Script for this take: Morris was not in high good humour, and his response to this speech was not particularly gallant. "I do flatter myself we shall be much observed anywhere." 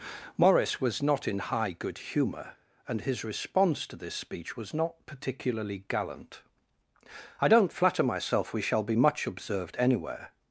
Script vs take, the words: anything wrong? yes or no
yes